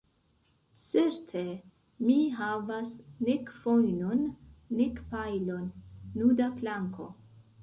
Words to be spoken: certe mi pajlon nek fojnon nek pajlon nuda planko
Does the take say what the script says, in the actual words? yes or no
no